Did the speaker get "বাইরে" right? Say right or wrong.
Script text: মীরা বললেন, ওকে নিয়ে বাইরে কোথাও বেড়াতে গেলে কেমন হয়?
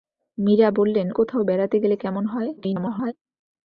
wrong